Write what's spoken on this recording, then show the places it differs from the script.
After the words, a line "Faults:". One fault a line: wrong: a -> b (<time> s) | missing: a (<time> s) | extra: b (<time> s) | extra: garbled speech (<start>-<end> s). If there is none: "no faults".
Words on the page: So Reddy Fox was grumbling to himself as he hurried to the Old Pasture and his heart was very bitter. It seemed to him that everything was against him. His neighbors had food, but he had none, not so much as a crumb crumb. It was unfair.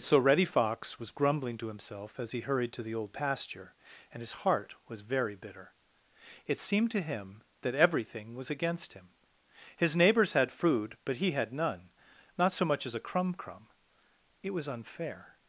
So Reddy Fox was grumbling to himself as he hurried to the Old Pasture and his heart was very bitter. It seemed to him that everything was against him. His neighbors had food, but he had none, not so much as a crumb crumb. It was unfair.
Faults:
no faults